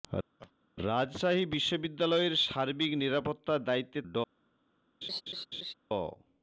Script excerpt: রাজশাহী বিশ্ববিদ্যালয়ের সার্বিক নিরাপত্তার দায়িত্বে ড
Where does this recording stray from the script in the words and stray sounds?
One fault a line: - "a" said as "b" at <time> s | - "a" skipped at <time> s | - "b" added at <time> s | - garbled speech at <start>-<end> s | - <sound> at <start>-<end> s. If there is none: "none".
- laugh at 0.4-0.5 s
- laugh at 5.0-5.7 s